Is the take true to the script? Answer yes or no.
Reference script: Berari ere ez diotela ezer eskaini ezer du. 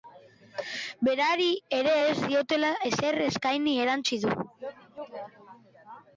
no